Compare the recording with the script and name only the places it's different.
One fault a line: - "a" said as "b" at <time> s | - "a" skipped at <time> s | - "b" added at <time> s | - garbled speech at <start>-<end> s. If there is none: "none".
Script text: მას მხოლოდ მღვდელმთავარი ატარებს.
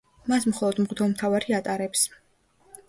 none